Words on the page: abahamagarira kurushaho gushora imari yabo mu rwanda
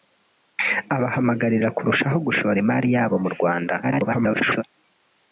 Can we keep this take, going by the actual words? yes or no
no